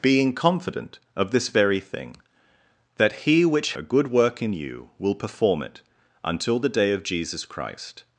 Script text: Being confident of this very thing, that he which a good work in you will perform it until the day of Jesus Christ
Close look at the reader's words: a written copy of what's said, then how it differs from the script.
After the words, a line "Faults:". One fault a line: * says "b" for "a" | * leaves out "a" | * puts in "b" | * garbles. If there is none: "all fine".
Being confident of this very thing, that he which a good work in you will perform it until the day of Jesus Christ
Faults:
all fine